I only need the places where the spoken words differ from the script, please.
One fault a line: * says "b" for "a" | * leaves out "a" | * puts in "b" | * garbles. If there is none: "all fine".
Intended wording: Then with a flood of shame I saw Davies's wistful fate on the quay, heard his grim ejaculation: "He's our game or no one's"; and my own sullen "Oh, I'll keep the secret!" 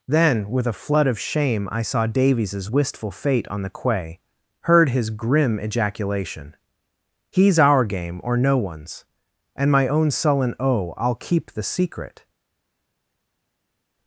all fine